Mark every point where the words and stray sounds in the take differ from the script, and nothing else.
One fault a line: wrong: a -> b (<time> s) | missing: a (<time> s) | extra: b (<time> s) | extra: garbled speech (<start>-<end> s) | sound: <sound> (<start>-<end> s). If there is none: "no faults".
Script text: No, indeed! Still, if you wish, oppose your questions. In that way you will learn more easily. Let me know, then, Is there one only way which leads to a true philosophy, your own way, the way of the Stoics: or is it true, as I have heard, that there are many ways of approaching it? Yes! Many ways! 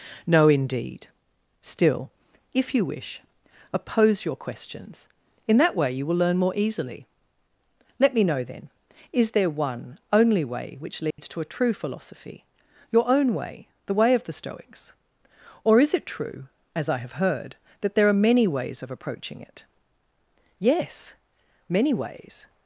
sound: dropout (11.1-11.2 s)